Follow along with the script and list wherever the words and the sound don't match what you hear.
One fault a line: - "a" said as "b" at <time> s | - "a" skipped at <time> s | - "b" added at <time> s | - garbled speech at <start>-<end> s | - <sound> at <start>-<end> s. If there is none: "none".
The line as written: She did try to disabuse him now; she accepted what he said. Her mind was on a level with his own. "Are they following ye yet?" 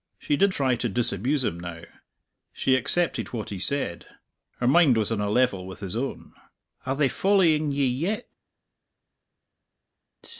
none